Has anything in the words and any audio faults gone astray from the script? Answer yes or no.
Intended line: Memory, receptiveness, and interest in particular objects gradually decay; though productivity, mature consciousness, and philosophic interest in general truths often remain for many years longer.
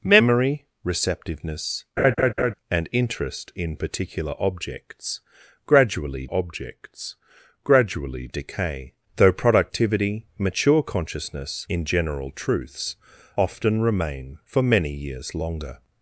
yes